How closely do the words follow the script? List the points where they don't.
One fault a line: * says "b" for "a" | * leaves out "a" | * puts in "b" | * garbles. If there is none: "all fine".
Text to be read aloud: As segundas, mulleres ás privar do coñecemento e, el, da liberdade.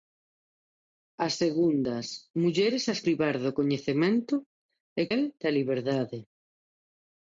all fine